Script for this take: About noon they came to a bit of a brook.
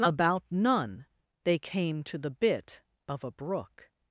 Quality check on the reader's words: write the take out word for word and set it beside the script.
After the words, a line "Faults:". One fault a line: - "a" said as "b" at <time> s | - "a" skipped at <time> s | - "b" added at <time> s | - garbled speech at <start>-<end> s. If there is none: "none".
About none they came to the bit of a brook.
Faults:
- "noon" said as "none" at 0.5 s
- "a" said as "the" at 2.2 s